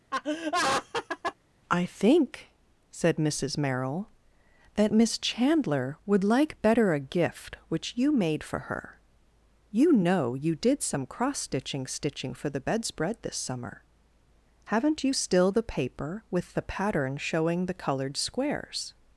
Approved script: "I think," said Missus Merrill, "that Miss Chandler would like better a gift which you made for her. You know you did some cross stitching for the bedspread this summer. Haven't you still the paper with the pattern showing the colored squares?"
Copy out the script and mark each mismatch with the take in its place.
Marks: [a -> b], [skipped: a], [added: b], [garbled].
"I think," said Missus Merrill, "that Miss Chandler would like better a gift which you made for her. You know you did some cross stitching [added: stitching] for the bedspread this summer. Haven't you still the paper with the pattern showing the colored squares?"